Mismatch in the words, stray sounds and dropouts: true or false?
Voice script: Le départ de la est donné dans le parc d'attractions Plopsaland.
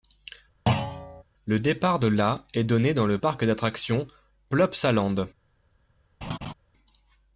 true